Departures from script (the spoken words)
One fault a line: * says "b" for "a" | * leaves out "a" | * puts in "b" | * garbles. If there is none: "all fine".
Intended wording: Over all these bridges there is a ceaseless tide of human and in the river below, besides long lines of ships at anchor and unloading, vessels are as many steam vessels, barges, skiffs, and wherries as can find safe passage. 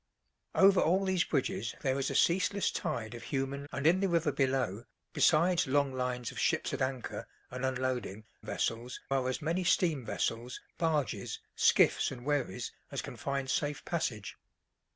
all fine